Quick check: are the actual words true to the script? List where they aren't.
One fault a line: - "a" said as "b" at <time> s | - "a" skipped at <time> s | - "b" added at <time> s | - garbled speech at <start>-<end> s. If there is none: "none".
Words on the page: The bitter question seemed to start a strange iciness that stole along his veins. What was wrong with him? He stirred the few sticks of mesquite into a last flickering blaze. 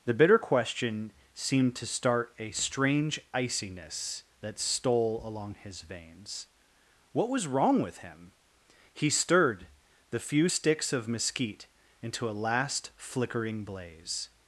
none